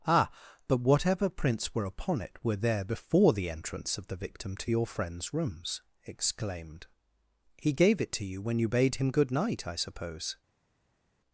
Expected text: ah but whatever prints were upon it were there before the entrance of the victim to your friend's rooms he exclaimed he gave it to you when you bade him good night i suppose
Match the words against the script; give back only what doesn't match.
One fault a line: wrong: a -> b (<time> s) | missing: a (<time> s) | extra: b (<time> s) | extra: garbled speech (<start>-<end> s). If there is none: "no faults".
missing: he (5.8 s)